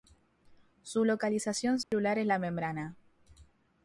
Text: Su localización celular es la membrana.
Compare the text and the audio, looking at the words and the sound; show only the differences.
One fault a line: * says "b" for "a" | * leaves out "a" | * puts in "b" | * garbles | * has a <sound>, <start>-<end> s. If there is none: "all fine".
* has a dropout, 1.8-1.9 s